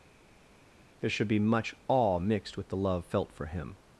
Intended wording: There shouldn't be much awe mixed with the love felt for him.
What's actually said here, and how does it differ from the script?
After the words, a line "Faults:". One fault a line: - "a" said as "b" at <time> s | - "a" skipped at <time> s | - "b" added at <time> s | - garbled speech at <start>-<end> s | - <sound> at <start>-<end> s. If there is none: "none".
There should be much awe mixed with the love felt for him.
Faults:
- "shouldn't" said as "should" at 1.1 s